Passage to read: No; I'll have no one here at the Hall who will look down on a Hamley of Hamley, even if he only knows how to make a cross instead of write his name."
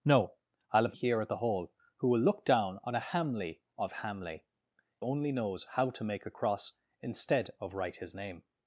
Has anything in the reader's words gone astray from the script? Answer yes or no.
yes